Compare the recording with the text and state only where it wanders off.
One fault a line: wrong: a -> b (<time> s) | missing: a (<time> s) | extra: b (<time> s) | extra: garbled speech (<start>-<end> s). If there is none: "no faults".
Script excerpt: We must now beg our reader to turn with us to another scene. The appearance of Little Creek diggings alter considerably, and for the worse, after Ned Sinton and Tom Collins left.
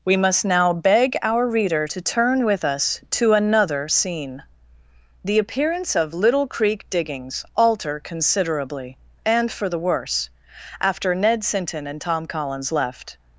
no faults